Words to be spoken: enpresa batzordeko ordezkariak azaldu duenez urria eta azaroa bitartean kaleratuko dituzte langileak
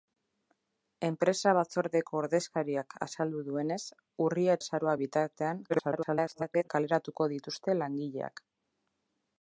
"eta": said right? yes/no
no